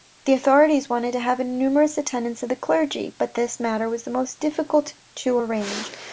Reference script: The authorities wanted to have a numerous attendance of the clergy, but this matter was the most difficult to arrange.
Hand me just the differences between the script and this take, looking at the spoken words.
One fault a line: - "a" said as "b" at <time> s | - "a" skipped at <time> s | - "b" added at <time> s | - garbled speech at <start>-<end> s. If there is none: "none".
none